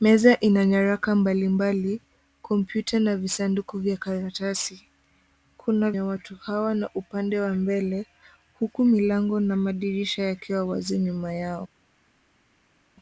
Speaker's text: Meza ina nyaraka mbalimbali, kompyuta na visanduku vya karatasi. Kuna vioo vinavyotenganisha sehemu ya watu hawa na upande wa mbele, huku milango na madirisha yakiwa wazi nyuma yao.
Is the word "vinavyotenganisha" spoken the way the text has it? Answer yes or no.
no